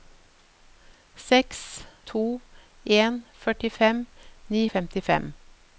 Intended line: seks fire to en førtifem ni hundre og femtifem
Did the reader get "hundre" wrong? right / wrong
wrong